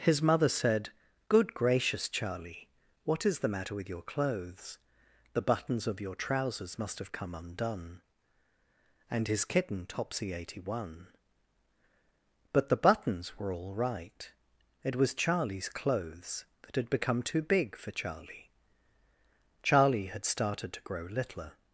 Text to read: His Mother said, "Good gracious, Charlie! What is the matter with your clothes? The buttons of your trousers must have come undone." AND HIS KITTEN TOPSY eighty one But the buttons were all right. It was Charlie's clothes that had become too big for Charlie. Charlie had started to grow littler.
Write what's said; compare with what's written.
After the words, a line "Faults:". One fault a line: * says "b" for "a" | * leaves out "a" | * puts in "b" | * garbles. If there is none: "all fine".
His Mother said, "Good gracious, Charlie! What is the matter with your clothes? The buttons of your trousers must have come undone." AND HIS KITTEN TOPSY eighty one But the buttons were all right. It was Charlie's clothes that had become too big for Charlie. Charlie had started to grow littler.
Faults:
all fine